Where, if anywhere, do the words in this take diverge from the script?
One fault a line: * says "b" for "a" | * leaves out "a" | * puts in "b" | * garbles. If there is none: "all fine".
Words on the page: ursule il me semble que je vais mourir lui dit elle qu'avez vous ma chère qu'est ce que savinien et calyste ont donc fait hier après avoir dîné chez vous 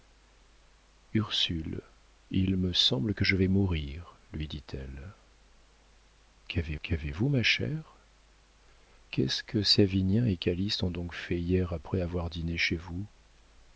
* puts in "qu'avez"